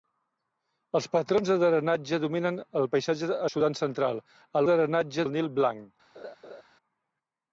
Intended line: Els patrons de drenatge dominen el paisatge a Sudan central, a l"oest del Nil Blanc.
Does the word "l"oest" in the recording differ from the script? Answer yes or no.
yes